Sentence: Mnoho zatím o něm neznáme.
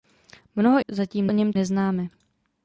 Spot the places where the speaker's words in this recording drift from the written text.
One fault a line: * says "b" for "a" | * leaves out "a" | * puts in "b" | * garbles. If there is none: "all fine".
all fine